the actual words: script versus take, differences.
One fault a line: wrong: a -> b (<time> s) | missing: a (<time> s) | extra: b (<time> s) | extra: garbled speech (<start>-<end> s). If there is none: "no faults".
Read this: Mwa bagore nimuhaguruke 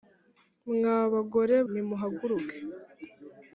no faults